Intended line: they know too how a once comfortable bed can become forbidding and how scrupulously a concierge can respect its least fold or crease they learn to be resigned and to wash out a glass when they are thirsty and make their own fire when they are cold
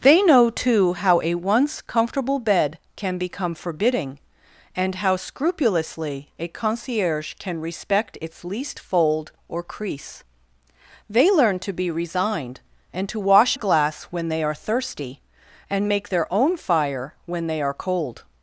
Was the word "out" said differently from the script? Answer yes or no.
yes